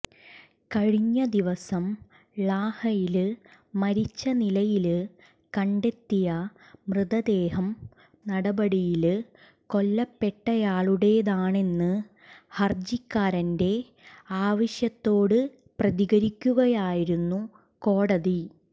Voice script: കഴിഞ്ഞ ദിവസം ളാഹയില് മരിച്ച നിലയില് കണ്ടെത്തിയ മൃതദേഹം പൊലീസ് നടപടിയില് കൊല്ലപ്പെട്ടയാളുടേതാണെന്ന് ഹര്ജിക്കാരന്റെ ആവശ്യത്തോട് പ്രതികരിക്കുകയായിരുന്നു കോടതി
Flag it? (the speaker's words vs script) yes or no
yes